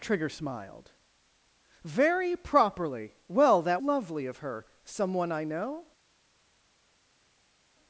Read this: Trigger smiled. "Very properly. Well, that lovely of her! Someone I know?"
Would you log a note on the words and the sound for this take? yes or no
no